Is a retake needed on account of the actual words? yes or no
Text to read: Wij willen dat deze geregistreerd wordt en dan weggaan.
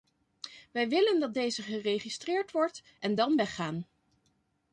no